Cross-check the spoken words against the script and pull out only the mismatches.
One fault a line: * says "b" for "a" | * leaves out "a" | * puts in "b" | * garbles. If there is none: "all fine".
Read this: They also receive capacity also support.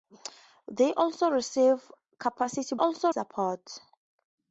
all fine